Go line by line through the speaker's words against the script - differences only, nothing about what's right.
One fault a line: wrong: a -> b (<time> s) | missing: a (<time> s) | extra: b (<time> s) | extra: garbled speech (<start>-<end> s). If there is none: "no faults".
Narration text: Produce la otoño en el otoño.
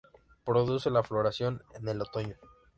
wrong: otoño -> floración (1.0 s)